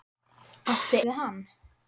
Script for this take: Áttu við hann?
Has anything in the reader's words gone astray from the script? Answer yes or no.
no